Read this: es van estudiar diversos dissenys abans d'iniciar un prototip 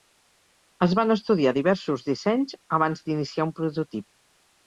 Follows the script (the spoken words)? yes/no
yes